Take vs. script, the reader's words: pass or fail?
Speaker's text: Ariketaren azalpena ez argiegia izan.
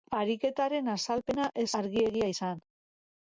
pass